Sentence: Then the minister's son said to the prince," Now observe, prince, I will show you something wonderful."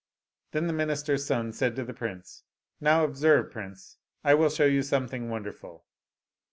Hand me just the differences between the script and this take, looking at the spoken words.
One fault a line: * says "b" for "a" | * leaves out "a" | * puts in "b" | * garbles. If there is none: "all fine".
all fine